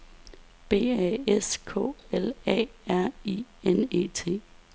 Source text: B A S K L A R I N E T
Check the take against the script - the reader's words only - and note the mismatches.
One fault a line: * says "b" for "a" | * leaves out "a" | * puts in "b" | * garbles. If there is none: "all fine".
all fine